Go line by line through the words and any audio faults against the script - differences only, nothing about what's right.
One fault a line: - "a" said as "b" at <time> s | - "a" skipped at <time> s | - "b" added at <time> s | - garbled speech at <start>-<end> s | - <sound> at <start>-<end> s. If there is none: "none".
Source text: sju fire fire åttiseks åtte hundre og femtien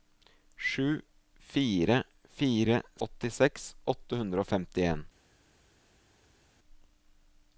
none